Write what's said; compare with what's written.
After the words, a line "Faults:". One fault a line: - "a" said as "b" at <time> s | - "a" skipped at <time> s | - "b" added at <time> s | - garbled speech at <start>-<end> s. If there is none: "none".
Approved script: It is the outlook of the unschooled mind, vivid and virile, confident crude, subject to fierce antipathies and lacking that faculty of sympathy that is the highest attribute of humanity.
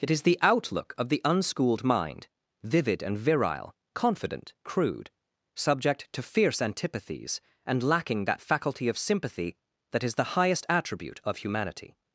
It is the outlook of the unschooled mind, vivid and virile, confident crude, subject to fierce antipathies and lacking that faculty of sympathy that is the highest attribute of humanity.
Faults:
none